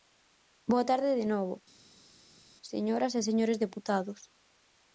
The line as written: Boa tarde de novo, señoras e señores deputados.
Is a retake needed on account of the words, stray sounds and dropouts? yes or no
no